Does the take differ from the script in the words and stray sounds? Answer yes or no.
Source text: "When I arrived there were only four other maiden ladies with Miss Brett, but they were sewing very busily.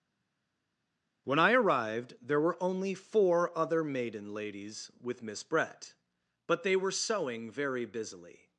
no